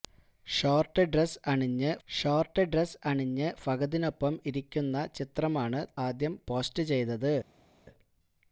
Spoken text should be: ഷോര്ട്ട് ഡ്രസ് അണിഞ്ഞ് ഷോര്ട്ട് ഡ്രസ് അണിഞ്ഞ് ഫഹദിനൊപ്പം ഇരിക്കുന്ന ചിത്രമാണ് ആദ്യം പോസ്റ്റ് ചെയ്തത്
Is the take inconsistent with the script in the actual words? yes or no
no